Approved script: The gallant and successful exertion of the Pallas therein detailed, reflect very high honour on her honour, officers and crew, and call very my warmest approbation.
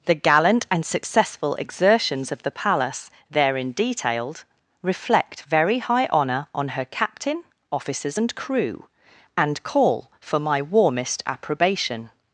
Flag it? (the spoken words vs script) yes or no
yes